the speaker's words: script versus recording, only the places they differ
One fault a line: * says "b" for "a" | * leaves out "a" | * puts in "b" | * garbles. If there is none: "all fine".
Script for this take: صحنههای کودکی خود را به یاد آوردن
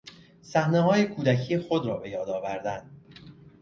all fine